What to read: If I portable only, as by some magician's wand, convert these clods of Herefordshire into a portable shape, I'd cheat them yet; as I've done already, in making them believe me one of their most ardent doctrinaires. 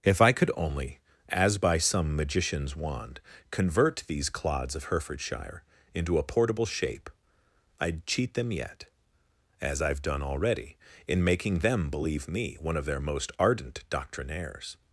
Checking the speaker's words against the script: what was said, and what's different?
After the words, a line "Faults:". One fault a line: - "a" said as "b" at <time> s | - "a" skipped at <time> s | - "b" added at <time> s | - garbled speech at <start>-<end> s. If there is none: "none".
If I could only, as by some magician's wand, convert these clods of Herefordshire into a portable shape, I'd cheat them yet; as I've done already, in making them believe me one of their most ardent doctrinaires.
Faults:
- "portable" said as "could" at 0.3 s